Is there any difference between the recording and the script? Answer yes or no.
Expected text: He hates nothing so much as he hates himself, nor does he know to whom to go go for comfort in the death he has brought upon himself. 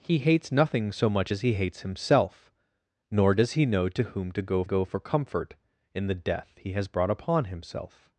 no